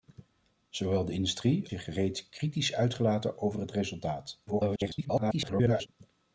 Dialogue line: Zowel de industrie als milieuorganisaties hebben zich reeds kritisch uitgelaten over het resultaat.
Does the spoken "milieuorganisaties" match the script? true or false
false